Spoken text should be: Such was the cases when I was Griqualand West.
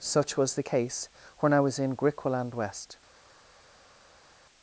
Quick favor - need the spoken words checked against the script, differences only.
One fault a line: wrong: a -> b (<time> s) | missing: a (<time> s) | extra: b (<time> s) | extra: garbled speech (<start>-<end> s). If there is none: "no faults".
wrong: cases -> case (0.6 s)
extra: in (1.8 s)